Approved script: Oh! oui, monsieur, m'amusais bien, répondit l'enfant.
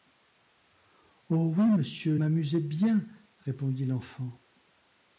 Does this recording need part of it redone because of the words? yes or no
no